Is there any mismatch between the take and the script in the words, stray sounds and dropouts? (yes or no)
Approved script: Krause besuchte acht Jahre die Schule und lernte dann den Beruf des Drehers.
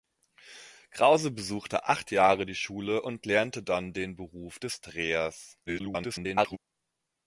yes